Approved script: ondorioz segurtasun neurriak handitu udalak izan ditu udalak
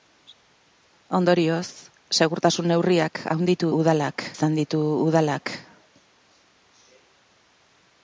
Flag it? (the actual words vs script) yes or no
no